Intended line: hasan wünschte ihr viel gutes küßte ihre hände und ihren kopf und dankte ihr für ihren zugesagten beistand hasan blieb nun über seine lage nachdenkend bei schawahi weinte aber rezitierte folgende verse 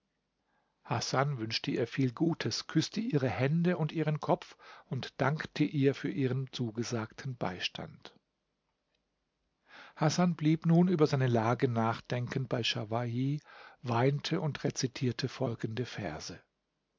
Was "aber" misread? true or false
true